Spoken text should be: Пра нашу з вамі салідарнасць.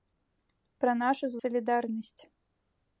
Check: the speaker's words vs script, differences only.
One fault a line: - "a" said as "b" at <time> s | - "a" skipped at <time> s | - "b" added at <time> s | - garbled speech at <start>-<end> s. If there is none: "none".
- "вамі" skipped at 1.4 s